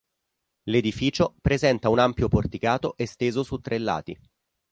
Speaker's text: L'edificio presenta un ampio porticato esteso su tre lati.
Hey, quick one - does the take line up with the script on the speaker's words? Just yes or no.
yes